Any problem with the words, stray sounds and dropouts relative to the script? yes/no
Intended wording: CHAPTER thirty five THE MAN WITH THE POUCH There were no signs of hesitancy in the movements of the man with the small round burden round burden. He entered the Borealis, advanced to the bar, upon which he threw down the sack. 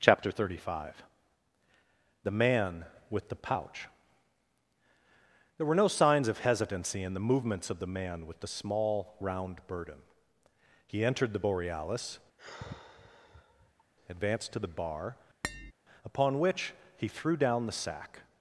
yes